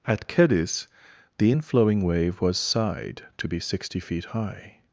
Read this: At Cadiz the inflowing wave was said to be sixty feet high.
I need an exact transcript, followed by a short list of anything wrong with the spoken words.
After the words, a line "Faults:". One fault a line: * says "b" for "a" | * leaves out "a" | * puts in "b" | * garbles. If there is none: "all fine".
At Cadiz the inflowing wave was sighed to be sixty feet high.
Faults:
* says "sighed" for "said"